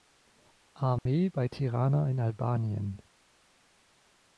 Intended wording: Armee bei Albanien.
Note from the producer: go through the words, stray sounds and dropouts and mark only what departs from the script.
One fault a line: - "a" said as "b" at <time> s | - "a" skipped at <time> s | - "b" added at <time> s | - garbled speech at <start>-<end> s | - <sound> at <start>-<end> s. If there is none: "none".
- dropout at 1.0-1.1 s
- "Tirana in" added at 1.5 s